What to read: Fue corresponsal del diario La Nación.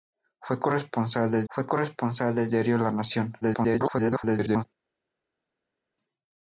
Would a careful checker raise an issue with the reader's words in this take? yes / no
yes